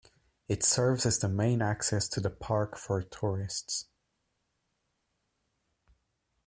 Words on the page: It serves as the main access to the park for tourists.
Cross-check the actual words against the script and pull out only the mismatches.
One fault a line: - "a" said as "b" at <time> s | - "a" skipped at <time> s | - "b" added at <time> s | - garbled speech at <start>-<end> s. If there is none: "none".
none